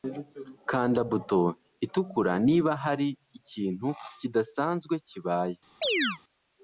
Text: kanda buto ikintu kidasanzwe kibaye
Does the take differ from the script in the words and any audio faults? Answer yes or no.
yes